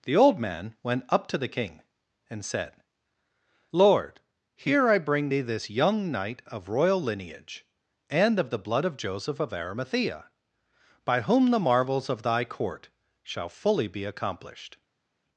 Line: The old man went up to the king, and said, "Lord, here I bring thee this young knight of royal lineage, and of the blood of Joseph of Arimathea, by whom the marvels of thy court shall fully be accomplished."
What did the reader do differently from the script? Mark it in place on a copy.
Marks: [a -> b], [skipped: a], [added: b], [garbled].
The old man went up to the king, and said, "Lord, here I bring thee this young knight of royal lineage, and of the blood of Joseph of Arimathea, by whom the marvels of thy court shall fully be accomplished."